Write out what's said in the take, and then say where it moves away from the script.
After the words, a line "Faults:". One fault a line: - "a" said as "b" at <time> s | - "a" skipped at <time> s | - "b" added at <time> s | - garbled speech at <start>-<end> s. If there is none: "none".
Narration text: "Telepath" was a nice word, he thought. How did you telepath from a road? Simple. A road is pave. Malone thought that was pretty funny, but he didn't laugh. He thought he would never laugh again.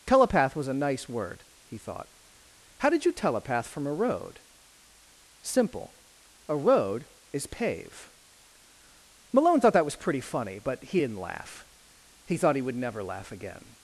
"Telepath" was a nice word, he thought. How did you telepath from a road? Simple. A road is pave. Malone thought that was pretty funny, but he didn't laugh. He thought he would never laugh again.
Faults:
none